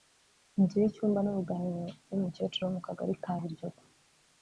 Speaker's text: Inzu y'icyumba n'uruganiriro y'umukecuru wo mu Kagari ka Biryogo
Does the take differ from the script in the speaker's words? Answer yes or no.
no